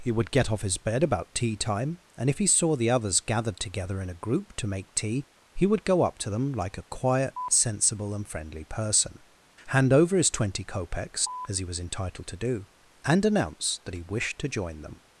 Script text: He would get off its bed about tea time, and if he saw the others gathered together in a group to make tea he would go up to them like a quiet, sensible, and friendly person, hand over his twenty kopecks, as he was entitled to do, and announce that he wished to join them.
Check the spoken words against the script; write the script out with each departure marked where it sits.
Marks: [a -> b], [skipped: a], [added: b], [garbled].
He would get off [its -> his] bed about tea time, and if he saw the others gathered together in a group to make tea he would go up to them like a quiet, sensible, and friendly person, hand over his twenty kopecks, as he was entitled to do, and announce that he wished to join them.